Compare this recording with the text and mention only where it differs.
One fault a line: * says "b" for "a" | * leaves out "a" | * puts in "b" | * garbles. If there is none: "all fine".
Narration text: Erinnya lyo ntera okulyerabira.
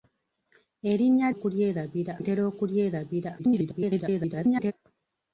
* says "okulyerabira" for "lyo"
* garbles